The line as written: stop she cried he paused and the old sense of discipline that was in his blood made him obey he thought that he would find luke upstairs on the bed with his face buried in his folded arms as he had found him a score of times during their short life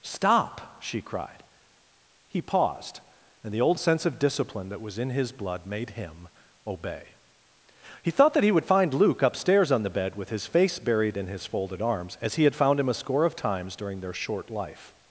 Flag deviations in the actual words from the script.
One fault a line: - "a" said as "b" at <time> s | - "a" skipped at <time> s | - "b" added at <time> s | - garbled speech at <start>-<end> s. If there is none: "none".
none